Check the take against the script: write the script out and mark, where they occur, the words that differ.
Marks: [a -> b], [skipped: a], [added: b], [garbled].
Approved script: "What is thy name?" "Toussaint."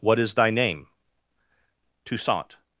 "What is thy name?" "Toussaint."